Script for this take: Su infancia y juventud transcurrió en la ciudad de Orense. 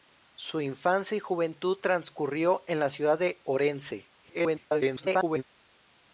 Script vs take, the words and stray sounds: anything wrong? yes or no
yes